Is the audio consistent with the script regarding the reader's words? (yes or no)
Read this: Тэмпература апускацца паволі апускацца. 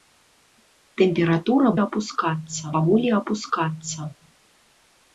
yes